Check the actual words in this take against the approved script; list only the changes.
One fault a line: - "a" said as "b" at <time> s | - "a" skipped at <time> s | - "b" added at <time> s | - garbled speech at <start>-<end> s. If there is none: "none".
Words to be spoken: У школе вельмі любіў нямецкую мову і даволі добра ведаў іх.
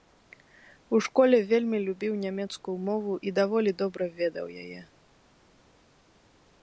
- "іх" said as "яе" at 4.6 s